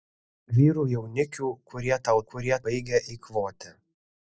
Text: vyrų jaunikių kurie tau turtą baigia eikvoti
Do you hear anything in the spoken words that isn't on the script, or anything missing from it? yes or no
yes